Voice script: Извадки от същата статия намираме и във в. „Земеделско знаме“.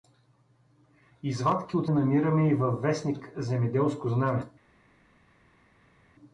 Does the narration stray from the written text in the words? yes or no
yes